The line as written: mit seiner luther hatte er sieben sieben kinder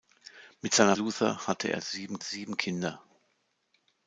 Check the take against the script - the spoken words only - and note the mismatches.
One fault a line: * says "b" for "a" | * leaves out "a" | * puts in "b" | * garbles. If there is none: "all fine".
all fine